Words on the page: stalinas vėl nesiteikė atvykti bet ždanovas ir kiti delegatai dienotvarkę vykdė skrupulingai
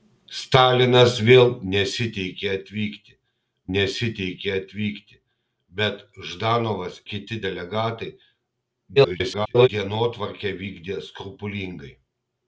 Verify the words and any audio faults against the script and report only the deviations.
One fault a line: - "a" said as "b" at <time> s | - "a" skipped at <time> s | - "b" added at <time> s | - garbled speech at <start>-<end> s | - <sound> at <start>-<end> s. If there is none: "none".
- "nesiteikė atvykti" added at 3.7 s
- "ir" skipped at 7.0 s
- garbled speech at 9.0-9.7 s